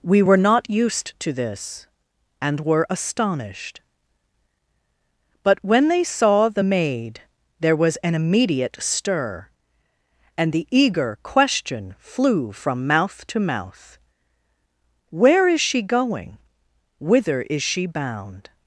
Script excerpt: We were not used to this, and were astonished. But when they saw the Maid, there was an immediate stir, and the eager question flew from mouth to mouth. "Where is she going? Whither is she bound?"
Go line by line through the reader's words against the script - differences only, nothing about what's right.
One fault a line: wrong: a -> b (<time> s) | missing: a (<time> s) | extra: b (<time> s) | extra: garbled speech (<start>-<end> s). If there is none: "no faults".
no faults